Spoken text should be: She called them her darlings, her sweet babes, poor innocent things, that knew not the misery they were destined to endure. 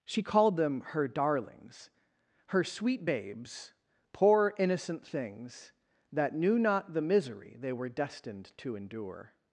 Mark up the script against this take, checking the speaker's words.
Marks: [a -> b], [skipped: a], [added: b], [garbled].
She called them her darlings, her sweet babes, poor innocent things, that knew not the misery they were destined to endure.